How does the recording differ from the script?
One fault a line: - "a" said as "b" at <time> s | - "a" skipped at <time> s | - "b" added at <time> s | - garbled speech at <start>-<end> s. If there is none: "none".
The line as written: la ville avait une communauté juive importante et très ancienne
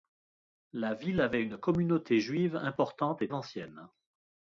- "très" skipped at 3.3 s